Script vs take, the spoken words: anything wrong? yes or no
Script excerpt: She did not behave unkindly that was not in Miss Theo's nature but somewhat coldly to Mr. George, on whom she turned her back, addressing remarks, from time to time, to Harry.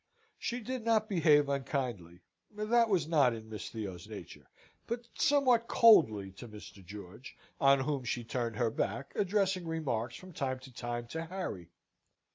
no